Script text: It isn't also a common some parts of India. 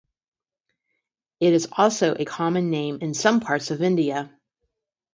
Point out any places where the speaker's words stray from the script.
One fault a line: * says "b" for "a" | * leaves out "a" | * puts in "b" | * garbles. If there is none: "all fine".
* says "is" for "isn't"
* puts in "name in"